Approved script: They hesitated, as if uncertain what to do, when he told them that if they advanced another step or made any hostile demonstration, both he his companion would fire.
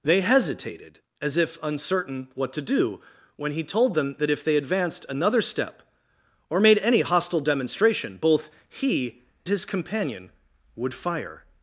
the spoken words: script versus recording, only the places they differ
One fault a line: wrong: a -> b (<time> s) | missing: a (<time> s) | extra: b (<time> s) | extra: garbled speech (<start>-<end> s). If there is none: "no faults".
no faults